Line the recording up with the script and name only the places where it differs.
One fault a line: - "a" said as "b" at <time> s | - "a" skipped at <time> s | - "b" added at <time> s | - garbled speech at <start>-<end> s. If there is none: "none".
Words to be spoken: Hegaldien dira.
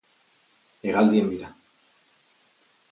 none